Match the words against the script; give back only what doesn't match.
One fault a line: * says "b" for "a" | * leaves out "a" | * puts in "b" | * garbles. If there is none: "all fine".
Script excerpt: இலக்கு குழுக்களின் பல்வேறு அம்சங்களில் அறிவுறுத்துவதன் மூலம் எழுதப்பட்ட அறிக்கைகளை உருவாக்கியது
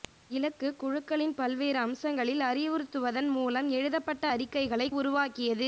all fine